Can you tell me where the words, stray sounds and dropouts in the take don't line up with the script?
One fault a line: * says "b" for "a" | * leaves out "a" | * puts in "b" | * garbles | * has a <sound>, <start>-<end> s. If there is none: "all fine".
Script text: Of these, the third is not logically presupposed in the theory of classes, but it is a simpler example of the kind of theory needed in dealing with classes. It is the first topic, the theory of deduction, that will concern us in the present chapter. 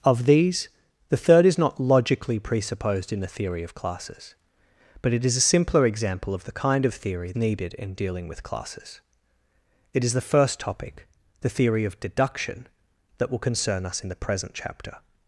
all fine